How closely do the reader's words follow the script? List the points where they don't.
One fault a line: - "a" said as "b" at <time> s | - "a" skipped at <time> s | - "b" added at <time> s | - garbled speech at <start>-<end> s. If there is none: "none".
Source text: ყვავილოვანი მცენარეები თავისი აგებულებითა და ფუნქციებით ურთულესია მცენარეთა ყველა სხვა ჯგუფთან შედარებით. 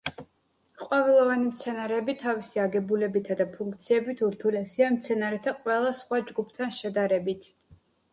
none